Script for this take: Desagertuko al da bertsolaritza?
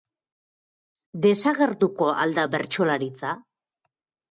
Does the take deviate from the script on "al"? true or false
false